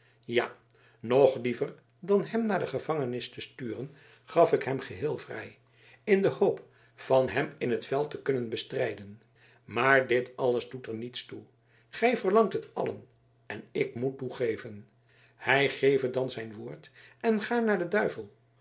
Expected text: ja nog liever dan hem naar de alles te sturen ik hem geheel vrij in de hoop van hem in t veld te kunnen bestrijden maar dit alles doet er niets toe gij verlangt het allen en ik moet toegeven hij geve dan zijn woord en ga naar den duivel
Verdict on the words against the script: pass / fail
fail